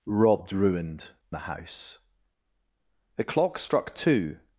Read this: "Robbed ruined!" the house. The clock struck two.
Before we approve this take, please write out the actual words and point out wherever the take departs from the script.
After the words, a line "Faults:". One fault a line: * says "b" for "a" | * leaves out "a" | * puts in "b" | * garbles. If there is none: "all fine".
"Robbed ruined!" the house. The clock struck two.
Faults:
all fine